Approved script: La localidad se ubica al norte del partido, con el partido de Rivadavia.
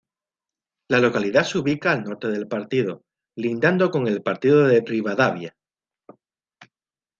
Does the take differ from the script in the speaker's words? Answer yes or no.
yes